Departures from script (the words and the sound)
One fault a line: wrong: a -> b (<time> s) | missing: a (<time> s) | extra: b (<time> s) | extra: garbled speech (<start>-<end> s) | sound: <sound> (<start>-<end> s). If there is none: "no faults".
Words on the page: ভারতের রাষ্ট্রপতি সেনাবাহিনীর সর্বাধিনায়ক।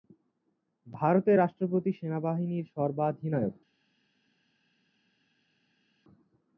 no faults